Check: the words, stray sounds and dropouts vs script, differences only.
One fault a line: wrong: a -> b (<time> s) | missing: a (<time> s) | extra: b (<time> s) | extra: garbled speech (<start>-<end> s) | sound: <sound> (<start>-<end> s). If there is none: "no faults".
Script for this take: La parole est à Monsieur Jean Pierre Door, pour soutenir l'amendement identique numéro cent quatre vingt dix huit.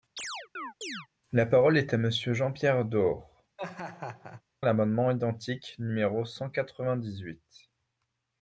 sound: chirp (0.2-1.1 s)
missing: pour soutenir (3.4 s)
sound: laugh (3.6-4.4 s)